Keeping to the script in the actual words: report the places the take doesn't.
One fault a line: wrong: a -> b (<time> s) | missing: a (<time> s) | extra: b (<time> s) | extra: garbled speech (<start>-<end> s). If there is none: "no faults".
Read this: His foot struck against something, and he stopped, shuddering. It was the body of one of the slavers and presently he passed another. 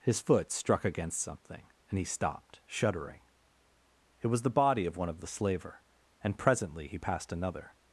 wrong: slavers -> slaver (5.3 s)